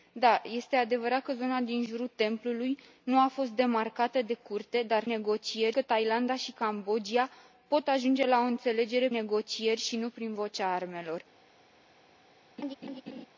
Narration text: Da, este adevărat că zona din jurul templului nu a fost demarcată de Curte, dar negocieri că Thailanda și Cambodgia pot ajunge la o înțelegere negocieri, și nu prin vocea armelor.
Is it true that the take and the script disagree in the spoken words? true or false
false